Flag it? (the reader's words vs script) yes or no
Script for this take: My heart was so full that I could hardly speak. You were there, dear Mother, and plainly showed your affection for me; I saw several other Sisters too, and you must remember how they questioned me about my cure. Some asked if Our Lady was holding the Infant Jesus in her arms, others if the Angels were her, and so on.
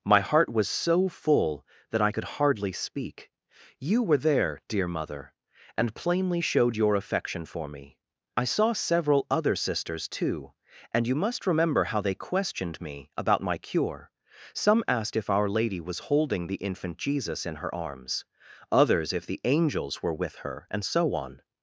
yes